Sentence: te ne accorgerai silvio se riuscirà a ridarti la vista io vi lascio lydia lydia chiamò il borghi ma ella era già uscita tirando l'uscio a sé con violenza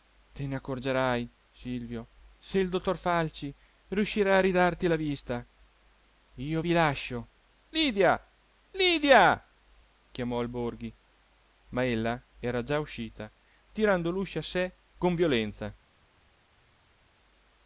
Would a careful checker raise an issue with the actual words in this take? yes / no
yes